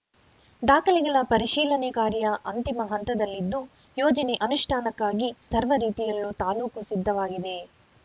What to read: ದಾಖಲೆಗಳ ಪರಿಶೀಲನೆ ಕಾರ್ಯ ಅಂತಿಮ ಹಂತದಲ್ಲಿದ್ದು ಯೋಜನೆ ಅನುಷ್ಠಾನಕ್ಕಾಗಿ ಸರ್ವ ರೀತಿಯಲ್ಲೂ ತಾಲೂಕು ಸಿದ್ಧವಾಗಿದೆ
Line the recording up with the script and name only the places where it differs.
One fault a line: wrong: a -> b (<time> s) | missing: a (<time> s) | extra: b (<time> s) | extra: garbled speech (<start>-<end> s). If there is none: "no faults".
no faults